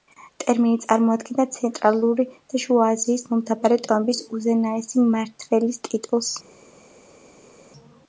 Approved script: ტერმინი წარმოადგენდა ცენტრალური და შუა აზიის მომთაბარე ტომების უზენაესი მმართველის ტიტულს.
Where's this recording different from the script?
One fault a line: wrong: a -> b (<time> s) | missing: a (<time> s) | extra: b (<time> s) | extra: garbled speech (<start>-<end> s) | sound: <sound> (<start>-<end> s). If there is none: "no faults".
no faults